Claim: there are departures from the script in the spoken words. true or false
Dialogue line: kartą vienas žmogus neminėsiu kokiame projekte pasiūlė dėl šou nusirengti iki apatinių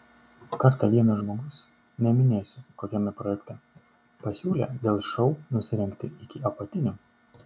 false